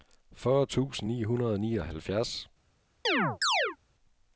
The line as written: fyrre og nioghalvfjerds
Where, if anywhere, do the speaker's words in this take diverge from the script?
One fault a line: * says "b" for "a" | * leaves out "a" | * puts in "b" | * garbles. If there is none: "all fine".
* puts in "tusind ni hundrede"